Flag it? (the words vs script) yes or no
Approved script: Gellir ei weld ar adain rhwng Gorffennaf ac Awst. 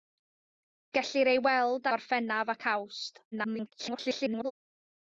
yes